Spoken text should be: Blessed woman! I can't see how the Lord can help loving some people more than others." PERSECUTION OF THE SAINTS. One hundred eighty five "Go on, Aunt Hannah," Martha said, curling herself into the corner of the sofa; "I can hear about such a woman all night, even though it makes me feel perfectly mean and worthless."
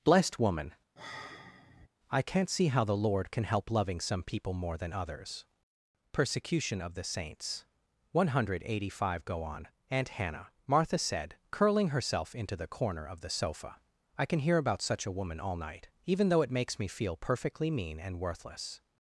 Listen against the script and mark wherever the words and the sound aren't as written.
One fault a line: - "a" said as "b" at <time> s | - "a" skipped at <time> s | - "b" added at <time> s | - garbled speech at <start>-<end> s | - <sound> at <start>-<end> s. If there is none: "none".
- sigh at 1.0-1.9 s